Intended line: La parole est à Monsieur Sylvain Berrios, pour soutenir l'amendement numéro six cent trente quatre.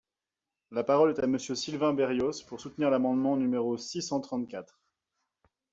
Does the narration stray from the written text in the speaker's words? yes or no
no